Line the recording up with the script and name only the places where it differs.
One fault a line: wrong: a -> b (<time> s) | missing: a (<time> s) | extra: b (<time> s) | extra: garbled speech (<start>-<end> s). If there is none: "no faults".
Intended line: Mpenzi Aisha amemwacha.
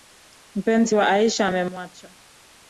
extra: wa (0.9 s)